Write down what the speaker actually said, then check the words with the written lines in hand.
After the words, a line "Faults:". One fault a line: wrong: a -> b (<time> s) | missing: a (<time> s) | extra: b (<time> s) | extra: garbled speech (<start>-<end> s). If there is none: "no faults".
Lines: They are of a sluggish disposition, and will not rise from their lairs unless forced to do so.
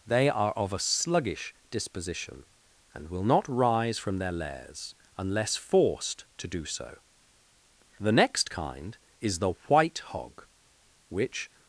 They are of a sluggish disposition, and will not rise from their lairs unless forced to do so. The next kind is the white hog, which
Faults:
extra: The next kind is the white hog which (8.0 s)